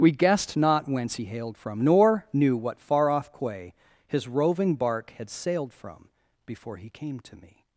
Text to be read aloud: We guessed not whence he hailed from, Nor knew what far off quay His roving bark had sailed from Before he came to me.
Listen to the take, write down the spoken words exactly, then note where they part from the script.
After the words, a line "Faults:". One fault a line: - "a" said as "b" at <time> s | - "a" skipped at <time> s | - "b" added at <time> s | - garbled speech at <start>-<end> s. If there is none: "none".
We guessed not whence he hailed from, Nor knew what far off quay His roving bark had sailed from Before he came to me.
Faults:
none